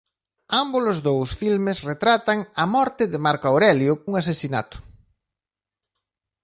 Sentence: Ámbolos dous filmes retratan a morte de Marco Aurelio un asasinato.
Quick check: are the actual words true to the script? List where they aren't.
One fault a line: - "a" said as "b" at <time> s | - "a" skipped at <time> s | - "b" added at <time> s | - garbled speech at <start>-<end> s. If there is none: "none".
none